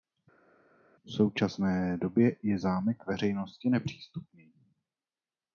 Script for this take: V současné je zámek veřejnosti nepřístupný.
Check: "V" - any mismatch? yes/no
no